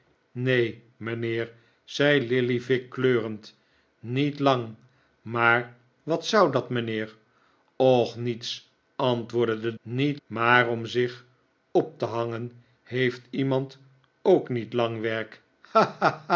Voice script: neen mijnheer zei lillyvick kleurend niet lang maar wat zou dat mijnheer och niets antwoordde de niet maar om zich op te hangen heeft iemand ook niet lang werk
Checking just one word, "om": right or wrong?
right